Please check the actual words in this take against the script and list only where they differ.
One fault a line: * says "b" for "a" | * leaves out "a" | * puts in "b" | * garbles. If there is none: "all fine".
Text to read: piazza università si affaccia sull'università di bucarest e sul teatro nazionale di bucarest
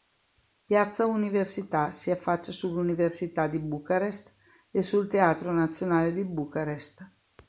all fine